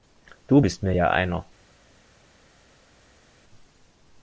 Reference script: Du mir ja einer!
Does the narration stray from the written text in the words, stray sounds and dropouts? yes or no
yes